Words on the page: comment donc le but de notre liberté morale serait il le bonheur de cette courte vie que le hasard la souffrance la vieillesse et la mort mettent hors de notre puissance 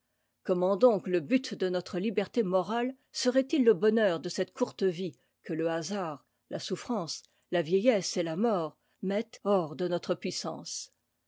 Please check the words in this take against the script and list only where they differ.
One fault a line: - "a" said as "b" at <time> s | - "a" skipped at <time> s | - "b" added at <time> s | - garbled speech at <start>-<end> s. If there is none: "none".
none